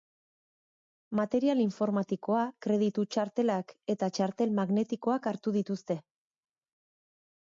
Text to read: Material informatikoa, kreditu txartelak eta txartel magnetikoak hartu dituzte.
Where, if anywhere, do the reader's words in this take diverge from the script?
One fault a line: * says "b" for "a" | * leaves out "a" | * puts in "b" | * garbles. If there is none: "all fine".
all fine